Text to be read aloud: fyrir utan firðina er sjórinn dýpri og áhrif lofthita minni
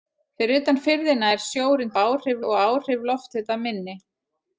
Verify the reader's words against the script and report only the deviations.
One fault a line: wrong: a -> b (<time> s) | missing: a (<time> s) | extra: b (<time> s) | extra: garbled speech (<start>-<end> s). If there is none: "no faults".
wrong: dýpri -> áhrif (2.0 s)